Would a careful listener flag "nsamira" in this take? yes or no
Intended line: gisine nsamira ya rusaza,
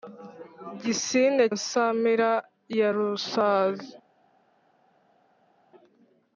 no